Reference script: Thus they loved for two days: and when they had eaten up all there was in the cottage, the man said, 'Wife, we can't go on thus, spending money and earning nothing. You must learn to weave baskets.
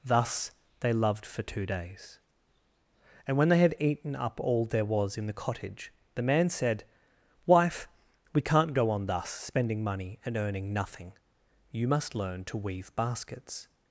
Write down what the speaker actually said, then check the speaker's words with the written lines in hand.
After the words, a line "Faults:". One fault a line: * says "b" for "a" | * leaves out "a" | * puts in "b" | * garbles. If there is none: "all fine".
Thus they loved for two days: and when they had eaten up all there was in the cottage, the man said, 'Wife, we can't go on thus, spending money and earning nothing. You must learn to weave baskets.
Faults:
all fine